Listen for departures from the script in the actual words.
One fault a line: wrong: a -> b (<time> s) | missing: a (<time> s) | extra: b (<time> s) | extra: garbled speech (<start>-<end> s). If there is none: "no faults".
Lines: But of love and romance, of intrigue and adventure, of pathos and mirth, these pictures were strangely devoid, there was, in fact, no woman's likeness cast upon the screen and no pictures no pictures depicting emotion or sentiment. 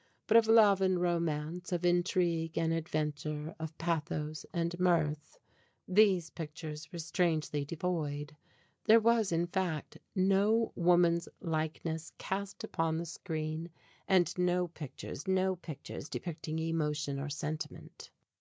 no faults